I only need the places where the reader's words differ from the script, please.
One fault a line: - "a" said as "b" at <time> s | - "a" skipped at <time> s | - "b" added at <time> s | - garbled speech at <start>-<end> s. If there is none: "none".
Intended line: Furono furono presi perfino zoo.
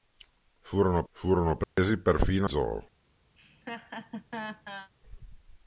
none